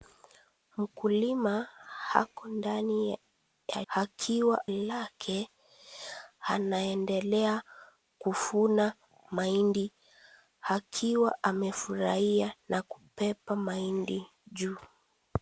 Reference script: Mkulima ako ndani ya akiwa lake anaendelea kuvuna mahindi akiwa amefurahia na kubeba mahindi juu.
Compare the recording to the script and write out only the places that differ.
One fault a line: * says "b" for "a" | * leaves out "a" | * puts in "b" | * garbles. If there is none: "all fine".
all fine